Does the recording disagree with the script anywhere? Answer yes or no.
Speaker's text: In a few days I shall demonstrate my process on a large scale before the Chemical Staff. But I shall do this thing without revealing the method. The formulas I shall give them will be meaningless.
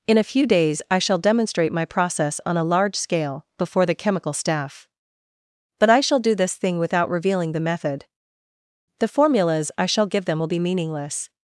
no